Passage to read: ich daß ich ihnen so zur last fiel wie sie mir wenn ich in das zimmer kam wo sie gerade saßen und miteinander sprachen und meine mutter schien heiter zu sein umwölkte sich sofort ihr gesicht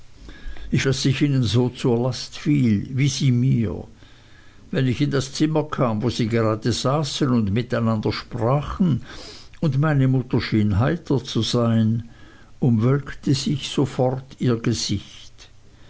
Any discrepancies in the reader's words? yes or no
no